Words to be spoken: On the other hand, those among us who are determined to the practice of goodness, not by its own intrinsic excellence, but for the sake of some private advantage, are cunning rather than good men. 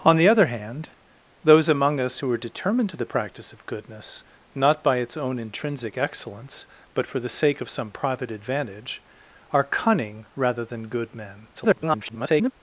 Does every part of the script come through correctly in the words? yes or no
no